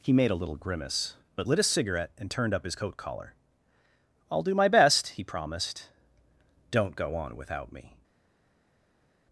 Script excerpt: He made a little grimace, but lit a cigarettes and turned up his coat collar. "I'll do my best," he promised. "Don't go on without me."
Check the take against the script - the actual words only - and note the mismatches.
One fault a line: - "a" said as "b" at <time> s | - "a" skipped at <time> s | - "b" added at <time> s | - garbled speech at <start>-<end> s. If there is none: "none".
- "cigarettes" said as "cigarette" at 1.6 s